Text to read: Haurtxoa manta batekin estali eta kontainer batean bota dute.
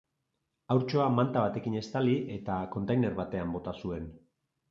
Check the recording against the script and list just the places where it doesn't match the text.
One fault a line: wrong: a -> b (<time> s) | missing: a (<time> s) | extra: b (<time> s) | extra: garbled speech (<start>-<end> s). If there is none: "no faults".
wrong: dute -> zuen (3.8 s)